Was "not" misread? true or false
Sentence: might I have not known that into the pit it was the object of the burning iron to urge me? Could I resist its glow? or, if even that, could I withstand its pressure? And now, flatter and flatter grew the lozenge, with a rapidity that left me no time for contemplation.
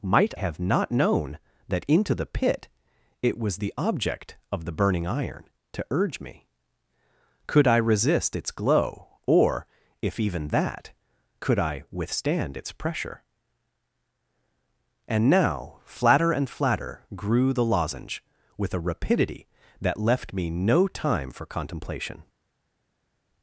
false